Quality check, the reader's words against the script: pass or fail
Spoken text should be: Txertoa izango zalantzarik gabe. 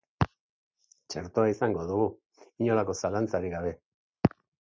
fail